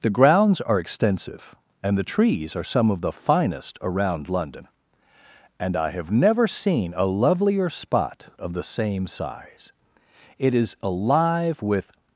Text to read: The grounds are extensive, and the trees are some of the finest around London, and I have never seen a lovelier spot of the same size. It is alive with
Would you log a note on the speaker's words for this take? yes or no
no